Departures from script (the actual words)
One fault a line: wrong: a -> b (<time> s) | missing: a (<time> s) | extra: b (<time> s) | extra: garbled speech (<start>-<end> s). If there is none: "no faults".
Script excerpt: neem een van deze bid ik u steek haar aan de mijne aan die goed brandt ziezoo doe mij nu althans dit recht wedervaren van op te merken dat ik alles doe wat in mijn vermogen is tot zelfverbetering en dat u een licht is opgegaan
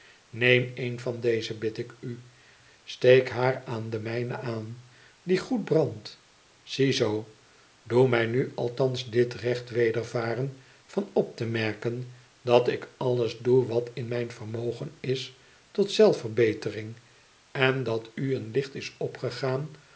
no faults